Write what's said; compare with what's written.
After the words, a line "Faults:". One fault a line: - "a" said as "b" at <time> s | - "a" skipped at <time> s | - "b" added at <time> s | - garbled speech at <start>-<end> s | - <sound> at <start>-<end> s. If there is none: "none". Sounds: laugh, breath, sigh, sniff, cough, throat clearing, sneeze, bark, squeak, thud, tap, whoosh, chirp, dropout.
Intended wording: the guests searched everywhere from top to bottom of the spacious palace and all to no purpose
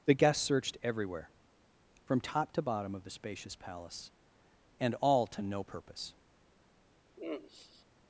the guests searched everywhere from top to bottom of the spacious palace and all to no purpose
Faults:
- sigh at 7.2-7.9 s